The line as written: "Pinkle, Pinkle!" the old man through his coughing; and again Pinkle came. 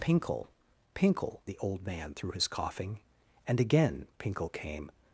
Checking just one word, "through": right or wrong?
right